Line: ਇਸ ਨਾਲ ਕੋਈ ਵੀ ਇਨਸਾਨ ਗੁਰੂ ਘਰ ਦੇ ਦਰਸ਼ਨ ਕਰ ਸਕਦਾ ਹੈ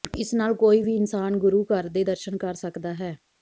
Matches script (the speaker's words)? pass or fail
pass